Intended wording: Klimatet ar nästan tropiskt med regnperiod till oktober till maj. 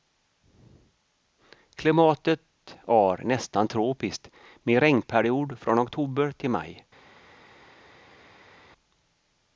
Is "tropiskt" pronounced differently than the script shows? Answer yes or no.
no